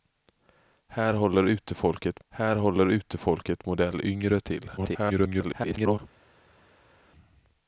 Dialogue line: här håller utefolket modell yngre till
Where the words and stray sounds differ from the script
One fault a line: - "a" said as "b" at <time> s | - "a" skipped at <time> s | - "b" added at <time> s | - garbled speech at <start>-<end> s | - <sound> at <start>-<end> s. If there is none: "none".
- "här håller utefolket" added at 2.3 s
- garbled speech at 4.8-6.0 s